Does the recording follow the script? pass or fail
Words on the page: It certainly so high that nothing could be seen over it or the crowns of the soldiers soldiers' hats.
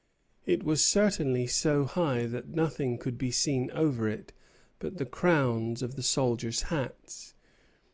fail